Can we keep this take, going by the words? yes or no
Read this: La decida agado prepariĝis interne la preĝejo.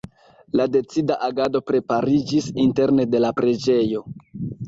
no